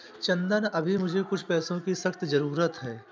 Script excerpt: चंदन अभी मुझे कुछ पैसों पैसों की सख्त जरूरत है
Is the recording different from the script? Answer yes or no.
yes